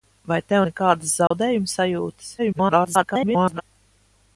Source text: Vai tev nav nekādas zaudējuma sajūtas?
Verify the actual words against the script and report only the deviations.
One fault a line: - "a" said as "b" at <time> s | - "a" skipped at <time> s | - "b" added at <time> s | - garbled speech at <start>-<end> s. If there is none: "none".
- "nav" skipped at 0.6 s
- garbled speech at 2.4-3.6 s